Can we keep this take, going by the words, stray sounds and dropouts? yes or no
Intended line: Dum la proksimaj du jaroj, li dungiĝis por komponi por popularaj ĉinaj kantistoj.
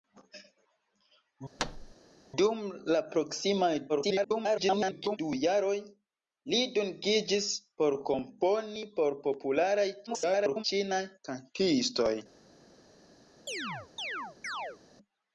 no